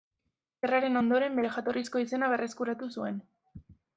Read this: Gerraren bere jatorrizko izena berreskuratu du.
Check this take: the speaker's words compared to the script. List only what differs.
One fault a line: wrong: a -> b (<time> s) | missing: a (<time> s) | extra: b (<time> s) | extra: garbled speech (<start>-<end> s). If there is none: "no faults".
extra: ondoren (1.0 s)
wrong: du -> zuen (3.0 s)